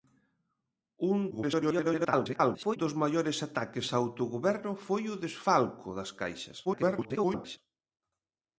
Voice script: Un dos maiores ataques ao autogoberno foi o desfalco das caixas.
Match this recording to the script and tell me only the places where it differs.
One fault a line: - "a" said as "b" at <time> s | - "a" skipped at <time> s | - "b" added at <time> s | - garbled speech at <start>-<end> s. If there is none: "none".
- garbled speech at 1.3-2.8 s
- garbled speech at 6.6-7.6 s